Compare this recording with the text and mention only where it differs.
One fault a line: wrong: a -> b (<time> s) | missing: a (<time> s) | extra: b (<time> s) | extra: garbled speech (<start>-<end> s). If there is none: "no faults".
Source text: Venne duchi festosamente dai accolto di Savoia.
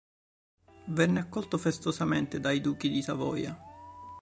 wrong: duchi -> accolto (1.2 s)
wrong: accolto -> duchi (2.6 s)